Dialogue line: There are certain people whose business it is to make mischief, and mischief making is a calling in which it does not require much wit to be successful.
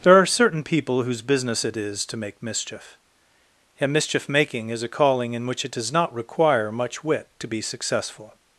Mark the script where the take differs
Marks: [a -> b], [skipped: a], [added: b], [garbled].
There are certain people whose business it is to make mischief, and mischief making is a calling in which it does not require much wit to be successful.